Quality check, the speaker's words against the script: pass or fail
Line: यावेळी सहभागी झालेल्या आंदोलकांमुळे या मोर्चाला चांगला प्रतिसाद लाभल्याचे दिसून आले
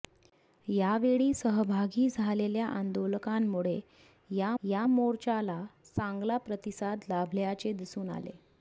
fail